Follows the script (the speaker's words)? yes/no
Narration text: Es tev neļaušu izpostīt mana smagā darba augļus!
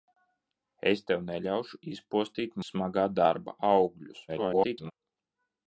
no